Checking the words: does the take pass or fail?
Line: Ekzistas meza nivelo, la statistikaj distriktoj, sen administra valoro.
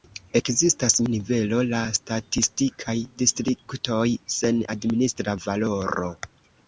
fail